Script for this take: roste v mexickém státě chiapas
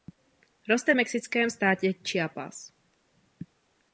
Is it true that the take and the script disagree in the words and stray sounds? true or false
false